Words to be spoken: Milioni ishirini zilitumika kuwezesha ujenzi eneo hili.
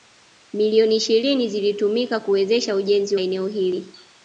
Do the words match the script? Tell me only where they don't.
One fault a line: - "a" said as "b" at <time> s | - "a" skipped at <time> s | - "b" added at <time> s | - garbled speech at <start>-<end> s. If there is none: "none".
none